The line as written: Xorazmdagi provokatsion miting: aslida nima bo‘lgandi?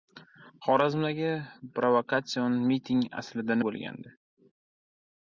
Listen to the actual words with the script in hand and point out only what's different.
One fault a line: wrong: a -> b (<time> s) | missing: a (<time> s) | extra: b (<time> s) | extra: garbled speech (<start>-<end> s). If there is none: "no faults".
missing: nima (3.6 s)